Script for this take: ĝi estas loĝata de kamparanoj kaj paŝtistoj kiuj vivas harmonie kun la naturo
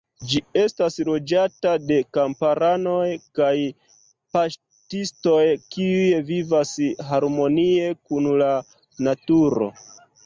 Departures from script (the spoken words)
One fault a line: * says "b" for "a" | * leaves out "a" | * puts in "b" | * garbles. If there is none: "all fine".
all fine